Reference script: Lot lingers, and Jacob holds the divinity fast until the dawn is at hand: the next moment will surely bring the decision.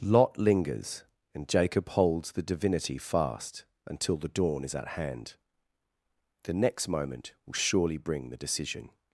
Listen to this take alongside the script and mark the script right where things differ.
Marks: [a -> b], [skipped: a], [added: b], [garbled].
Lot lingers, and Jacob holds the divinity fast until the dawn is at hand: the next moment will surely bring the decision.